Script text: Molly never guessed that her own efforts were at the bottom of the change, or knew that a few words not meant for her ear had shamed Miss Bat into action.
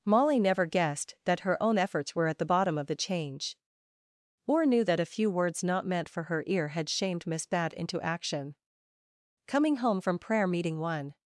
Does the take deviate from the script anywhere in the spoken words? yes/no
yes